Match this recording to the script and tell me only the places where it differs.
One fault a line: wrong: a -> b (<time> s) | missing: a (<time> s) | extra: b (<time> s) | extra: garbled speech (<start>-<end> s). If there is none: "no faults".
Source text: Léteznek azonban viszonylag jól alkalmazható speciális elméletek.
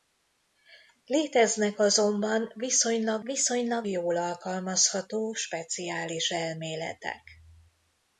extra: viszonylag (3.2 s)